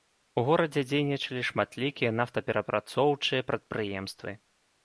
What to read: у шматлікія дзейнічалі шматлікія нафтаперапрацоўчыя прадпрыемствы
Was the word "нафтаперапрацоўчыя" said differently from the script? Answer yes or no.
no